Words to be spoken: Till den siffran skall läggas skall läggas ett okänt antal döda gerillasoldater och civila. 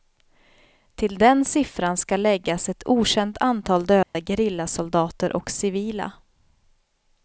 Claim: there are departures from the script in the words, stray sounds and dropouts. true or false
true